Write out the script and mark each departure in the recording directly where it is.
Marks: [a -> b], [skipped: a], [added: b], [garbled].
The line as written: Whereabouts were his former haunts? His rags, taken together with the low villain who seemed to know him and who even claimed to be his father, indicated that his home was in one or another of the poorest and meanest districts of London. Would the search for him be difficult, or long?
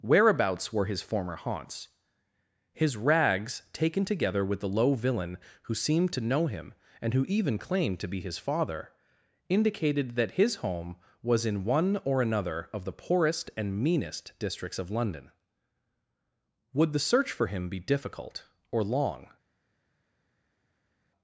Whereabouts were his former haunts? His rags, taken together with the low villain who seemed to know him and who even claimed to be his father, indicated that his home was in one or another of the poorest and meanest districts of London. Would the search for him be difficult, or long?